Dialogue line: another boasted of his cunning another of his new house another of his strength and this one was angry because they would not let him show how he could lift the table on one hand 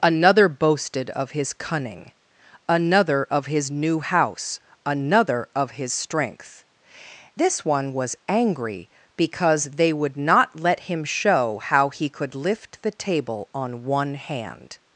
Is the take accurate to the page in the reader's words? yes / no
no